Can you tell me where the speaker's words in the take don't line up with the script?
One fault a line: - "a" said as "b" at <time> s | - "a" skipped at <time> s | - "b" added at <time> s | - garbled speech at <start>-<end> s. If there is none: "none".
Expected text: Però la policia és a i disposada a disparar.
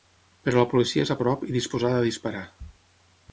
- "prop" added at 1.2 s